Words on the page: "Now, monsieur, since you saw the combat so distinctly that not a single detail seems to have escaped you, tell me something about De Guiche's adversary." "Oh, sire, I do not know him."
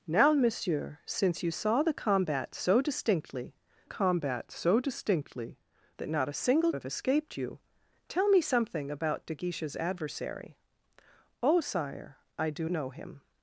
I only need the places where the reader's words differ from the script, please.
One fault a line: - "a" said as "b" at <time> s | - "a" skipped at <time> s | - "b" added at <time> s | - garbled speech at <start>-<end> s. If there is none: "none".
- "combat so distinctly" added at 3.9 s
- "detail seems to" skipped at 6.7 s
- "not" skipped at 12.7 s